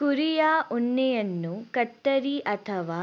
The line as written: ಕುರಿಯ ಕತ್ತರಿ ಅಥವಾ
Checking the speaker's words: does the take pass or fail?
fail